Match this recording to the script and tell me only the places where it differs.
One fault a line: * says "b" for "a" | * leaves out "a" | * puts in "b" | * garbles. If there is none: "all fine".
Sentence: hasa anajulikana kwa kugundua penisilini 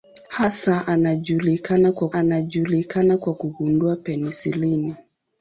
* puts in "anajulikana kwa"